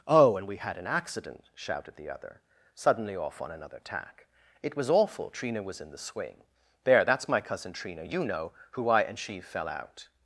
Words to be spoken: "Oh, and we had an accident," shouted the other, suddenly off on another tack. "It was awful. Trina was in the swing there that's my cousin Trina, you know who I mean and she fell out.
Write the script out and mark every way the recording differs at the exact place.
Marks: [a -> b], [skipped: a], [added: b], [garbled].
"Oh, and we had an accident," shouted the other, suddenly off on another tack. "It was awful. Trina was in the swing there that's my cousin Trina, you know who I [skipped: mean] and she fell out.